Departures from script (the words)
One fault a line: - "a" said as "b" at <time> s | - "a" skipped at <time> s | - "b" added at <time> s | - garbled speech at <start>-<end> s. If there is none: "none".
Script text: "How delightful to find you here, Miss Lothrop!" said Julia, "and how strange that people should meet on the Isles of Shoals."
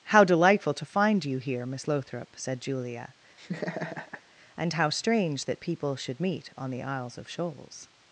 none